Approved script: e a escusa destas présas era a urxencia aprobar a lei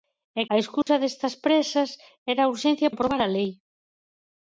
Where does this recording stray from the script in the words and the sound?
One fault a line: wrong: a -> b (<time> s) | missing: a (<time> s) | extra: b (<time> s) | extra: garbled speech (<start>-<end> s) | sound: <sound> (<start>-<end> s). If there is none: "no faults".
sound: dropout (0.8-0.9 s)